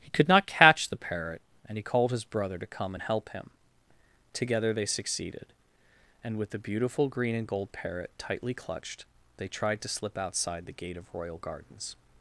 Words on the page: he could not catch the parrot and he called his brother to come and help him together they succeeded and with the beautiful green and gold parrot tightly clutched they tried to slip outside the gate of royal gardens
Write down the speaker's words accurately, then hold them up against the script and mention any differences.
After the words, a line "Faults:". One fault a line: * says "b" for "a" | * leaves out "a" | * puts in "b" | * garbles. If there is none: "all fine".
he could not catch the parrot and he called his brother to come and help him together they succeeded and with the beautiful green and gold parrot tightly clutched they tried to slip outside the gate of royal gardens
Faults:
all fine